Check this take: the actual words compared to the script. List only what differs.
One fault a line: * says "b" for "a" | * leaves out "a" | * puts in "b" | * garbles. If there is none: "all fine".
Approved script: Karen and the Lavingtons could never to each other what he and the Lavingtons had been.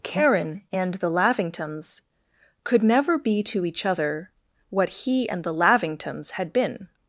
* puts in "be"